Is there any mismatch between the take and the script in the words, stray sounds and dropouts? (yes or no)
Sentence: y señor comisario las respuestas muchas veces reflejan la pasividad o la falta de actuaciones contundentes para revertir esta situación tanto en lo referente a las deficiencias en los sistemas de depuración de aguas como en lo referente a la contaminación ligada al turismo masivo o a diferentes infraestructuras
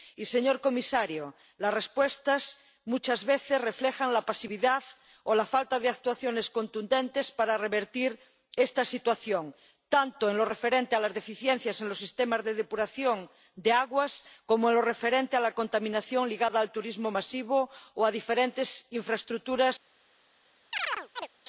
yes